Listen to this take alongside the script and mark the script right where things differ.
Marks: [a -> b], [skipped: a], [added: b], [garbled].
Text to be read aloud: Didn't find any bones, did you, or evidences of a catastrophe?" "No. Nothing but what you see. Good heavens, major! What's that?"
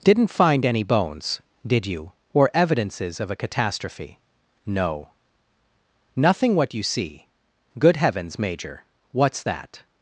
Didn't find any bones, did you, or evidences of a catastrophe?" "No. Nothing [skipped: but] what you see. Good heavens, major! What's that?"